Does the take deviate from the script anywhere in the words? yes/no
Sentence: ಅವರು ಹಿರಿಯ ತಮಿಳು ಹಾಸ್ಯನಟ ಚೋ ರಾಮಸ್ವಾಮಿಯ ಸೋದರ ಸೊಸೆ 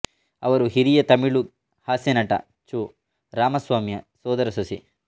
no